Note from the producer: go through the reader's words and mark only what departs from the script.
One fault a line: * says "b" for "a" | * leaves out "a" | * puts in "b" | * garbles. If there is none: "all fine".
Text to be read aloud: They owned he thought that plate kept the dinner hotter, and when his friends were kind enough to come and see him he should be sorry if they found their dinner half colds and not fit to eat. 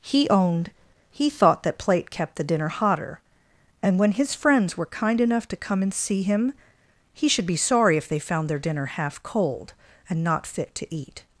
* says "He" for "They"
* says "cold" for "colds"